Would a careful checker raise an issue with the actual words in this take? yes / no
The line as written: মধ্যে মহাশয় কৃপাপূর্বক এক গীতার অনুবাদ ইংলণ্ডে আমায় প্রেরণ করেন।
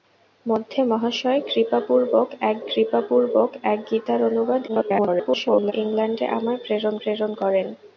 yes